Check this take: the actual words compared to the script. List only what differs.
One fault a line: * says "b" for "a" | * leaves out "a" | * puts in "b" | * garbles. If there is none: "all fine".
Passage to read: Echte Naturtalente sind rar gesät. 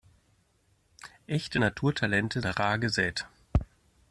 * leaves out "sind"